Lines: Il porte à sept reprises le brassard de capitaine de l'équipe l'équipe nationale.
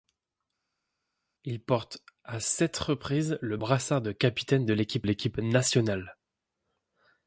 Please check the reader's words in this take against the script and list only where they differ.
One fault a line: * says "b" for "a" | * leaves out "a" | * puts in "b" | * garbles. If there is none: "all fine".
all fine